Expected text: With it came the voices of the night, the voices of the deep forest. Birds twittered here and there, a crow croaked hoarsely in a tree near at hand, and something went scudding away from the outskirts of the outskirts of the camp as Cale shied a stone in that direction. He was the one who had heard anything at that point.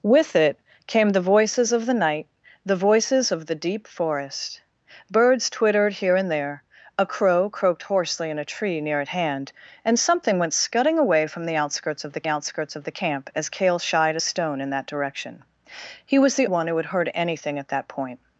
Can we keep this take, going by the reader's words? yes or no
yes